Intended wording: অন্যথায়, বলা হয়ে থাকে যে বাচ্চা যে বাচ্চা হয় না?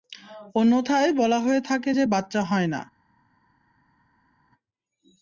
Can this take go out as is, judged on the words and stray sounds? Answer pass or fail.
fail